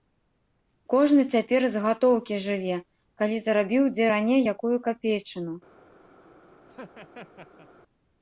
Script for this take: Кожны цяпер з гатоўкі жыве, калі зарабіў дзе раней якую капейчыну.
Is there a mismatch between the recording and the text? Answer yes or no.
no